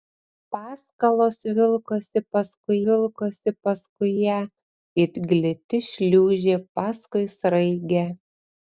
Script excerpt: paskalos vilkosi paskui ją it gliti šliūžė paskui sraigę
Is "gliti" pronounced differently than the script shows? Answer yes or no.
no